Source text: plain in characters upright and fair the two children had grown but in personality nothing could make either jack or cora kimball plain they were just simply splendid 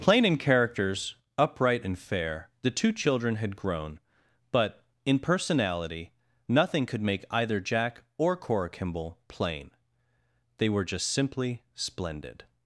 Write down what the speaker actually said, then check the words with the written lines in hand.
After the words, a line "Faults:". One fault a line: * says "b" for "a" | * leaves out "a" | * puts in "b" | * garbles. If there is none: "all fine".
plain in characters upright and fair the two children had grown but in personality nothing could make either jack or cora kimball plain they were just simply splendid
Faults:
all fine